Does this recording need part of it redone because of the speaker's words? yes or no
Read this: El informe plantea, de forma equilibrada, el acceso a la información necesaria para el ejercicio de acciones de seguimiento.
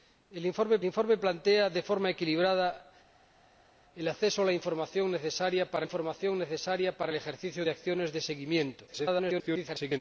yes